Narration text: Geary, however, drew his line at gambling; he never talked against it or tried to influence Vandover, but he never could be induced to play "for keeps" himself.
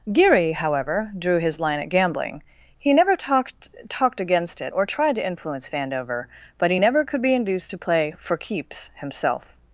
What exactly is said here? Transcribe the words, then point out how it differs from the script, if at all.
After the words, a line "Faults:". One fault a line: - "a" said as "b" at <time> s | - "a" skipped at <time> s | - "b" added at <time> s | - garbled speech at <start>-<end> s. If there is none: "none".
Geary, however, drew his line at gambling; he never talked talked against it or tried to influence Vandover, but he never could be induced to play "for keeps" himself.
Faults:
- "talked" added at 3.9 s